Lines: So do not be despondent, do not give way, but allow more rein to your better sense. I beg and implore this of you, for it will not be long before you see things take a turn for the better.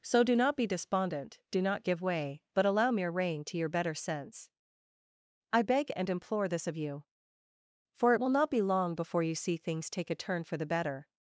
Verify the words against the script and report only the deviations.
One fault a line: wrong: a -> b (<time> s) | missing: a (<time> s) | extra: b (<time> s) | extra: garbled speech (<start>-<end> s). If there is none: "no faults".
wrong: more -> mere (2.9 s)